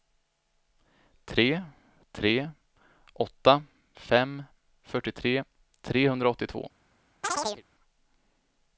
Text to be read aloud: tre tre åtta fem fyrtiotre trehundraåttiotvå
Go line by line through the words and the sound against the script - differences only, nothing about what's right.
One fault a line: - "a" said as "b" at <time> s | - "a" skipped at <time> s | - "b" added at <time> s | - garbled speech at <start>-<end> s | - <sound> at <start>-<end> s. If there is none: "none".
- chirp at 7.2-7.6 s